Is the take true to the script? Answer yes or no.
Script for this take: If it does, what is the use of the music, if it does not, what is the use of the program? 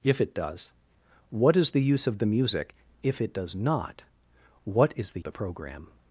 no